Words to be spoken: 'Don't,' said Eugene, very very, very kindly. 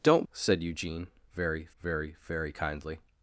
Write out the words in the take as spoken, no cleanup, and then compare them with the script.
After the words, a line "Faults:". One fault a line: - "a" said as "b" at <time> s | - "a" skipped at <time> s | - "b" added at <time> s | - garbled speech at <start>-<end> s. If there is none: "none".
'Don't,' said Eugene, very very, very kindly.
Faults:
none